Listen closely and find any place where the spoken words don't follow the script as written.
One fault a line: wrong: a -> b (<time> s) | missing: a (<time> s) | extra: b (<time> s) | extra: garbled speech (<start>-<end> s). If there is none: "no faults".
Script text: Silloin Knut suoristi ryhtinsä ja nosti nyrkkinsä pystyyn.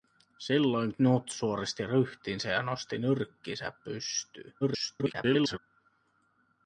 extra: garbled speech (4.6-5.6 s)